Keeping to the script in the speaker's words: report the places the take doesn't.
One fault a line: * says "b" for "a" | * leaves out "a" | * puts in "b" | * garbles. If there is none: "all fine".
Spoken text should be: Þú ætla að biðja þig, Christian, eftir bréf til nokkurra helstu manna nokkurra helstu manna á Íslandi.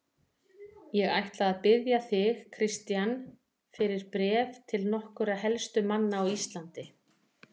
* says "Ég" for "Þú"
* says "fyrir" for "eftir"
* leaves out "nokkurra helstu manna"